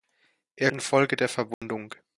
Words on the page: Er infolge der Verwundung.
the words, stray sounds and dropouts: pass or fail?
fail